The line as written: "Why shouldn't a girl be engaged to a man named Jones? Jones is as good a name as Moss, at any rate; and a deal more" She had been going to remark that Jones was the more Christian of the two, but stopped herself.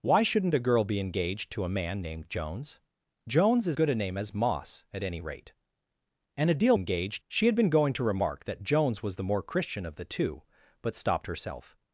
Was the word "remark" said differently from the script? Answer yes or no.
no